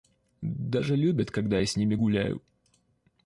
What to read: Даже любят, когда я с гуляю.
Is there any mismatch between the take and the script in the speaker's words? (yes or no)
yes